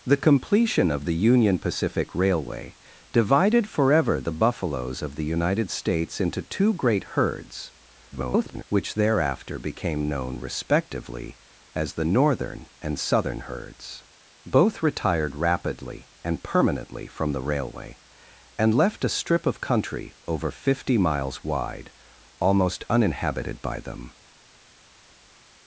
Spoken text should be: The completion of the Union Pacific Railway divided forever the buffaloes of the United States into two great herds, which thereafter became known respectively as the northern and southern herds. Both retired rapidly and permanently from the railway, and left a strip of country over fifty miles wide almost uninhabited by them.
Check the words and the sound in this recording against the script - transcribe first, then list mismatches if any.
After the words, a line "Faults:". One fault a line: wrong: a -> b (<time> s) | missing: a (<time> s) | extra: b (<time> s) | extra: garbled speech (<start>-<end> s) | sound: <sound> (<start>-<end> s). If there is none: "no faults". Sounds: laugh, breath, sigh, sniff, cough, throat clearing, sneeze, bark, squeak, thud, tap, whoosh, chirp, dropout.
The completion of the Union Pacific Railway divided forever the buffaloes of the United States into two great herds, [garbled] which thereafter became known respectively as the northern and southern herds. Both retired rapidly and permanently from the railway, and left a strip of country over fifty miles wide almost uninhabited by them.
Faults:
extra: garbled speech (8.1-8.6 s)